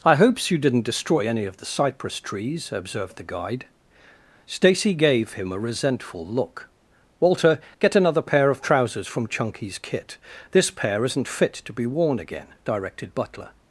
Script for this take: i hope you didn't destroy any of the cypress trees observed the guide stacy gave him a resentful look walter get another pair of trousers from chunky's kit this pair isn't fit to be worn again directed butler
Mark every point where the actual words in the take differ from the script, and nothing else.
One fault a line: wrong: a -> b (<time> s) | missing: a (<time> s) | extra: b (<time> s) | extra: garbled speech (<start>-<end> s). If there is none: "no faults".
wrong: hope -> hopes (0.1 s)